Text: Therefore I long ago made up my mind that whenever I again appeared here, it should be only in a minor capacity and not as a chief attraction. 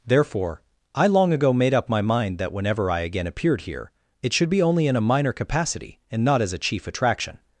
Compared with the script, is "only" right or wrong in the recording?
right